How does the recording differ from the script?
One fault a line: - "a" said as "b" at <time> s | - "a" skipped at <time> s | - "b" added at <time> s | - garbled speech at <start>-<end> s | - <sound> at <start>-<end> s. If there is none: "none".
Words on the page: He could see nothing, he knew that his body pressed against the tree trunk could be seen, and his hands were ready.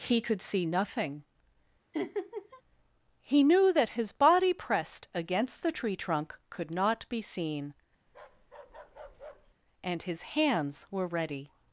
- laugh at 1.9-2.6 s
- "not" added at 6.7 s
- bark at 8.1-9.6 s